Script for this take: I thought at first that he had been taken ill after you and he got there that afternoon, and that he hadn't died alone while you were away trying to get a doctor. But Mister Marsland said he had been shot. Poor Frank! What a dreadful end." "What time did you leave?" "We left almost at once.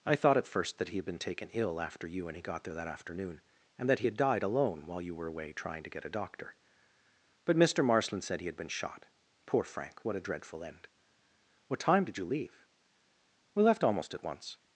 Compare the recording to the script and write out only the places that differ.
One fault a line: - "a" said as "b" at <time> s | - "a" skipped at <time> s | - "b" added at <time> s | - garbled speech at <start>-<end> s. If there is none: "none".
- "hadn't" said as "had" at 4.0 s